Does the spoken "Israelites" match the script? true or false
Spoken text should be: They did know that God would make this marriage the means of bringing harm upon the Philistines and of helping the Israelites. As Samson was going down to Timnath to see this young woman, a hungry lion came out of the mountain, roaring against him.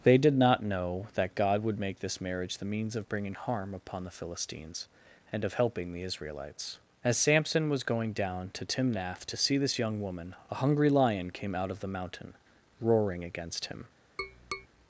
true